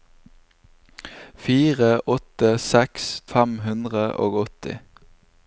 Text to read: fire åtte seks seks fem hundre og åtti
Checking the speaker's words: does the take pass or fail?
pass